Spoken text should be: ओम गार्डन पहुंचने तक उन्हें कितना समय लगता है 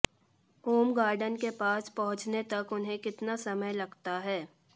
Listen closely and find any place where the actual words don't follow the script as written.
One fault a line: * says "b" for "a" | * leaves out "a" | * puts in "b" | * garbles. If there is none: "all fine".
* puts in "के पास"